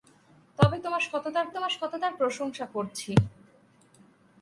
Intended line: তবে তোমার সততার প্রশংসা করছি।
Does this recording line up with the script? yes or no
no